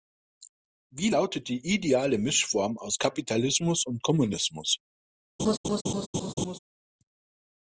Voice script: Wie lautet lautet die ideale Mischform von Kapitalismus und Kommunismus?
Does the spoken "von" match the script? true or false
false